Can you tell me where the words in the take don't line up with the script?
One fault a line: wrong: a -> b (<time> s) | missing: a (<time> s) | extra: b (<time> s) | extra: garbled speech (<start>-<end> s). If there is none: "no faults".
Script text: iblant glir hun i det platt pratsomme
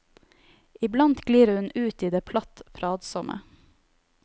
extra: ut (1.8 s)